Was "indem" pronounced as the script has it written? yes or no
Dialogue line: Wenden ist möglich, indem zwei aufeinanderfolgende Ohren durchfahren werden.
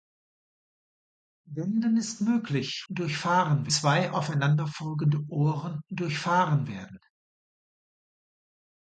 no